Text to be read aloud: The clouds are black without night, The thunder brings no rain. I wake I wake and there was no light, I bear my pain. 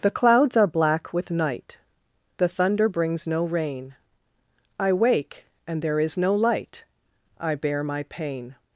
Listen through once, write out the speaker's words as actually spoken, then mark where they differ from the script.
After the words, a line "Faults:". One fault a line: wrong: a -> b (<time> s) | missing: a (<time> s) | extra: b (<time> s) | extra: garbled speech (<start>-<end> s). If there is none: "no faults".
The clouds are black with night, The thunder brings no rain. I wake and there is no light, I bear my pain.
Faults:
wrong: without -> with (1.1 s)
missing: I wake (5.5 s)
wrong: was -> is (6.0 s)